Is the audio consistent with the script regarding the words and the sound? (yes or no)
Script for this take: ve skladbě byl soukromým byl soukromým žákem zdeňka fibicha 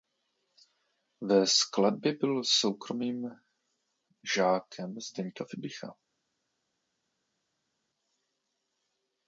no